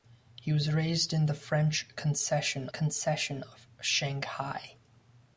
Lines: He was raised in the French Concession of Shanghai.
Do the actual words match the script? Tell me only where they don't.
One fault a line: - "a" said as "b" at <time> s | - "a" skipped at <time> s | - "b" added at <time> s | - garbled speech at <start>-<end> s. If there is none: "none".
- "Concession" added at 2.7 s